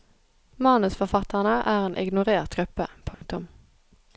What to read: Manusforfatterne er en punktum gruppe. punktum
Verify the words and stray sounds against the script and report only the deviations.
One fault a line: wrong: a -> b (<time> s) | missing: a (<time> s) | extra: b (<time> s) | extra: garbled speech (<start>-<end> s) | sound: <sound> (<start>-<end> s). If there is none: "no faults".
wrong: punktum -> ignorert (2.0 s)
sound: dropout (3.1-3.2 s)